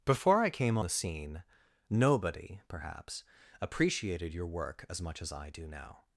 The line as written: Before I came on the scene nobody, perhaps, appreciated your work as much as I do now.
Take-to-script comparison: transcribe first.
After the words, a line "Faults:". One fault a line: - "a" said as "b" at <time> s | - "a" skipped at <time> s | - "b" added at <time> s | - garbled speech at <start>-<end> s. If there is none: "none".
Before I came the scene nobody, perhaps, appreciated your work as much as I do now.
Faults:
- "on" skipped at 0.8 s